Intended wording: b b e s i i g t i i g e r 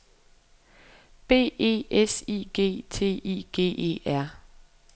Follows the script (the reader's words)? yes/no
no